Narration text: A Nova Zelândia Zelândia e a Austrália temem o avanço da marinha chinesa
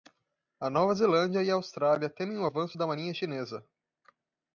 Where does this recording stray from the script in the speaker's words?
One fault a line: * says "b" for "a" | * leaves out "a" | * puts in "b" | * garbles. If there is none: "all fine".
* leaves out "Zelândia"